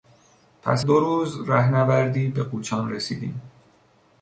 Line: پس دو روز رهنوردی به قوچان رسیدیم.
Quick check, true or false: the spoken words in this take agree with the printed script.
true